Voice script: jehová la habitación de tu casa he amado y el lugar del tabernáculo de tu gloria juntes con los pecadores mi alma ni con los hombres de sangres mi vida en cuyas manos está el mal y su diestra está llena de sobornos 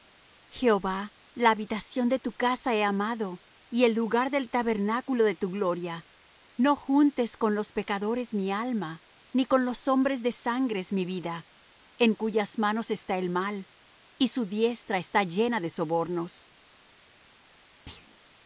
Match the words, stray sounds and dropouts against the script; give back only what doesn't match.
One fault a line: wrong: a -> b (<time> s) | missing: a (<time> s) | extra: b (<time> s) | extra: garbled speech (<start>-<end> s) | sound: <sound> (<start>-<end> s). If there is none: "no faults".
extra: no (6.6 s)
sound: thud (17.9-18.2 s)